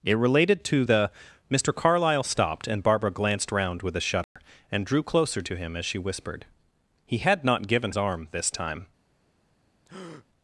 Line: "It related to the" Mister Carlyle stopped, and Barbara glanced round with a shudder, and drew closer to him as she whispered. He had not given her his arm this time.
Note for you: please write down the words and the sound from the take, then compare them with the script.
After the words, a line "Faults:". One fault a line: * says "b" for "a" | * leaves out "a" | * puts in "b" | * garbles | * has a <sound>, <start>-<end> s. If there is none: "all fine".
"It related to the" Mister Carlyle stopped, and Barbara glanced round with a shudder, and drew closer to him as she whispered. He had not given arm this time.
Faults:
* has a dropout, 4.2-4.4 s
* leaves out "her his"
* has a breath, 9.9-10.3 s